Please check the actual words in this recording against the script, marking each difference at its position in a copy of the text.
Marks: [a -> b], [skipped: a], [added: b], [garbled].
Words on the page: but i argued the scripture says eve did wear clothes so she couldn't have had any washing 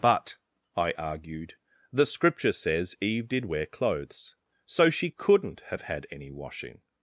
but i argued the scripture says eve did wear clothes so she couldn't have had any washing